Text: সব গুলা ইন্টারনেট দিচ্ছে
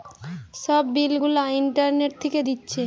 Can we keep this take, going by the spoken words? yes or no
no